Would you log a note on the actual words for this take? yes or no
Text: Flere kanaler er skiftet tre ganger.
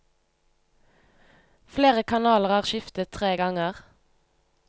no